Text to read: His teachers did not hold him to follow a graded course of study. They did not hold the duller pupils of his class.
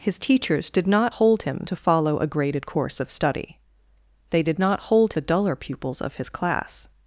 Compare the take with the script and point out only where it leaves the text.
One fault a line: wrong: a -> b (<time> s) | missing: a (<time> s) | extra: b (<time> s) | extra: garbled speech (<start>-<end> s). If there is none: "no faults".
no faults